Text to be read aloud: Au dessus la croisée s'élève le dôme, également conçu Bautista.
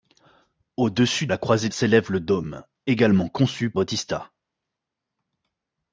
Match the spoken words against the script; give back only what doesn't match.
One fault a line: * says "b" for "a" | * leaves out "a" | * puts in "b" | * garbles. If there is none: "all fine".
all fine